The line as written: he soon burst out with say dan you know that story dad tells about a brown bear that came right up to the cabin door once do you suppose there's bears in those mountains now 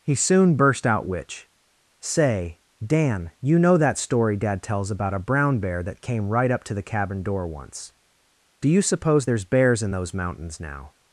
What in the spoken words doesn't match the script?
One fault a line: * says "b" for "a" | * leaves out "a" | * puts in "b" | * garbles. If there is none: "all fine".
* says "which" for "with"